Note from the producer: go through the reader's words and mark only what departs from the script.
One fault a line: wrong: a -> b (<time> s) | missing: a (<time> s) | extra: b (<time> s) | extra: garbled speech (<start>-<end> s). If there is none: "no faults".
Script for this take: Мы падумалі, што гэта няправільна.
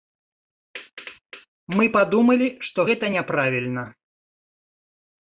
no faults